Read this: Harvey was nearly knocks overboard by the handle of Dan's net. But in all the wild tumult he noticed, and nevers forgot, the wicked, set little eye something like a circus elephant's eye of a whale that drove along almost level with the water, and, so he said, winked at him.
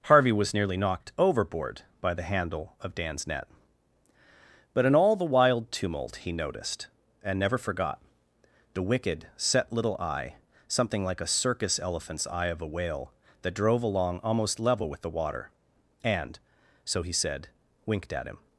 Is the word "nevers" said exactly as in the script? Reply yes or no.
no